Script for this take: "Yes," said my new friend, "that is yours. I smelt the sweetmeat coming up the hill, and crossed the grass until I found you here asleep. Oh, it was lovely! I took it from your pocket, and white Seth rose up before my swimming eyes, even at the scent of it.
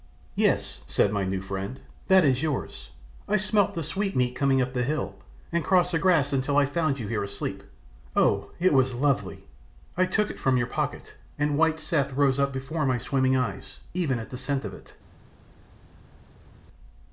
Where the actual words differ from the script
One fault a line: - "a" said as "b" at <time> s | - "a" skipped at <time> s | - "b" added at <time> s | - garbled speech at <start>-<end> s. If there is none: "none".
none